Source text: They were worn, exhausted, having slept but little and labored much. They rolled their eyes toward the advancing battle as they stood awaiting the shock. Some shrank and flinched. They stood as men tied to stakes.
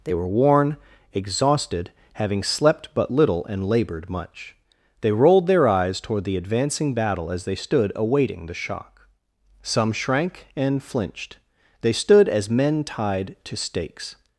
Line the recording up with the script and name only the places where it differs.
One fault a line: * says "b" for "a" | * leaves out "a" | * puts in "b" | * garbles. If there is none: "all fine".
all fine